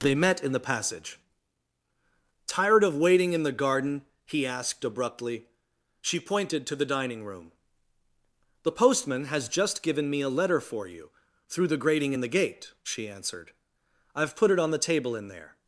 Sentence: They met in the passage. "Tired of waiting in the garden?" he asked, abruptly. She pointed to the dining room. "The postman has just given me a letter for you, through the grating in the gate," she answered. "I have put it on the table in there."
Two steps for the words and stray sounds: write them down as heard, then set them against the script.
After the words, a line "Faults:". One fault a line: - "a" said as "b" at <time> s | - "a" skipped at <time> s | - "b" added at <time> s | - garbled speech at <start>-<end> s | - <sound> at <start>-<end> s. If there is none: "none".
They met in the passage. "Tired of waiting in the garden?" he asked, abruptly. She pointed to the dining room. "The postman has just given me a letter for you, through the grating in the gate," she answered. "I have put it on the table in there."
Faults:
none